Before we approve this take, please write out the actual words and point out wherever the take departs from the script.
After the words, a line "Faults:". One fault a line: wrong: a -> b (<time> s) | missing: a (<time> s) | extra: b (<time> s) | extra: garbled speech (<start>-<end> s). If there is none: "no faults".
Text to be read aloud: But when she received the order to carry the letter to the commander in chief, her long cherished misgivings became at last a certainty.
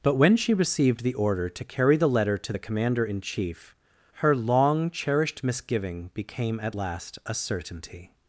But when she received the order to carry the letter to the commander in chief, her long cherished misgiving became at last a certainty.
Faults:
wrong: misgivings -> misgiving (5.4 s)